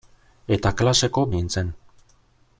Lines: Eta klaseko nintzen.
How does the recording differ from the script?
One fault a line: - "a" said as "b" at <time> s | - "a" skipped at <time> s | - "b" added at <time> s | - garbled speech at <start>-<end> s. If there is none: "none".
none